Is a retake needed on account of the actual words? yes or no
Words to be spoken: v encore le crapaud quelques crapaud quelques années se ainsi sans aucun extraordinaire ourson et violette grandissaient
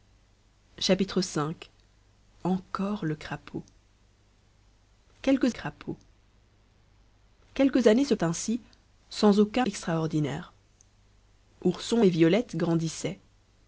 no